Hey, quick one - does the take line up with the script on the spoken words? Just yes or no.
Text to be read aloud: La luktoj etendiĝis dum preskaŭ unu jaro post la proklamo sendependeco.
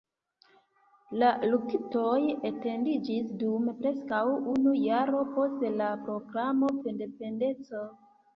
yes